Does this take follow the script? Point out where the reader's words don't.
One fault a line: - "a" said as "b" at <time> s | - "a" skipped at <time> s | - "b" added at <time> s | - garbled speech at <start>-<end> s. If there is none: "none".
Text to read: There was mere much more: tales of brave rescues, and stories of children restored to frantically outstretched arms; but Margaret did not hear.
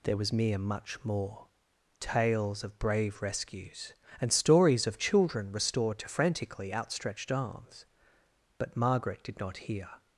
none